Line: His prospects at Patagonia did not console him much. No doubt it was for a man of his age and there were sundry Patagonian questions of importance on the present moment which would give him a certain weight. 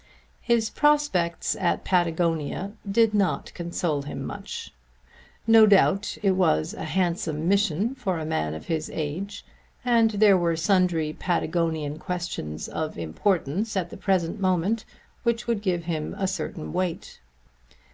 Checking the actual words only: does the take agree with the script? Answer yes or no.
no